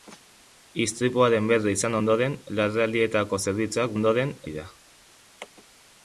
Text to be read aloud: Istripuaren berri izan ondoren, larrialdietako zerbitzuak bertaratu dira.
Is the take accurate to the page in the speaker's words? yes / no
no